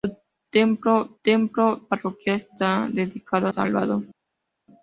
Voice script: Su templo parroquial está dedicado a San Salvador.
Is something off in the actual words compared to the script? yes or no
yes